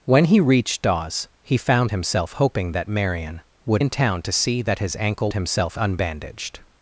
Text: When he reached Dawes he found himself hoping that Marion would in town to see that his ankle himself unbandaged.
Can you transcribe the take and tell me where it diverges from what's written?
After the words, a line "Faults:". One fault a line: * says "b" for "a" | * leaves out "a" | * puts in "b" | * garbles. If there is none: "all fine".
When he reached Dawes he found himself hoping that Marion would in town to see that his ankle himself unbandaged.
Faults:
all fine